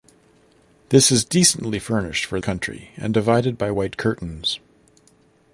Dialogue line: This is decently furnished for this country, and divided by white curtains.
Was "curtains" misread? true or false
false